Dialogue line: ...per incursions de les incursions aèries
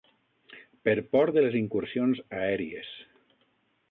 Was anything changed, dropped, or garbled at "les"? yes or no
no